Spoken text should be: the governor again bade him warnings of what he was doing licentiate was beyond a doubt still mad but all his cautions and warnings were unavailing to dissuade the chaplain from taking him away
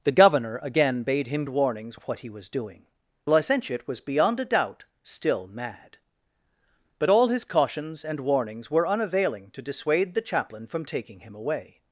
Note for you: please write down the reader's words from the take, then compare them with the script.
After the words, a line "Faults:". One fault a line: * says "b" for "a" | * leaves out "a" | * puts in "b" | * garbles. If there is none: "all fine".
the governor again bade him warnings of what he was doing licentiate was beyond a doubt still mad but all his cautions and warnings were unavailing to dissuade the chaplain from taking him away
Faults:
all fine